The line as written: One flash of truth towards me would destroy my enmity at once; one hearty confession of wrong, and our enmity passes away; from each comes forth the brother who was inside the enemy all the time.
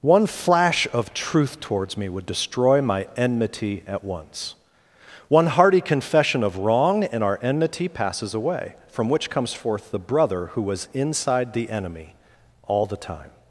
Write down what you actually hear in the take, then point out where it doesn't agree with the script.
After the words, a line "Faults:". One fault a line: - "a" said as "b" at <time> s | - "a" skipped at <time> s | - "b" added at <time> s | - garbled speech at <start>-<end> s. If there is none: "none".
One flash of truth towards me would destroy my enmity at once; one hearty confession of wrong, and our enmity passes away; from which comes forth the brother who was inside the enemy all the time.
Faults:
- "each" said as "which" at 9.1 s